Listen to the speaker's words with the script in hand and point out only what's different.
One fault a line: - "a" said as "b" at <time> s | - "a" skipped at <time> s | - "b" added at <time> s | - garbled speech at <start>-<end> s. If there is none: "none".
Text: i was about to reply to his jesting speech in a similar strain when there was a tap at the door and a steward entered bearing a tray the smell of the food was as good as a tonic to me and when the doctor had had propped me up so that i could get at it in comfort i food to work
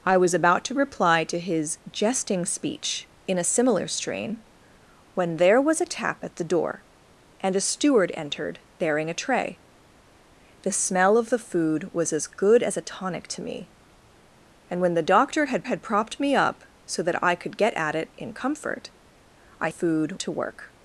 none